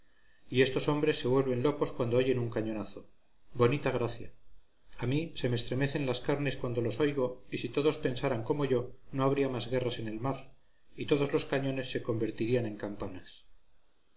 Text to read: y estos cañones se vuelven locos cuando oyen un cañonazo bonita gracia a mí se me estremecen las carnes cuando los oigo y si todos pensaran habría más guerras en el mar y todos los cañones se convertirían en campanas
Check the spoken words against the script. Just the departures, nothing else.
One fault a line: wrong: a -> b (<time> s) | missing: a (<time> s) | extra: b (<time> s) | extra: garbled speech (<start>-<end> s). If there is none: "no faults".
wrong: cañones -> hombres (0.9 s)
extra: como yo no (8.4 s)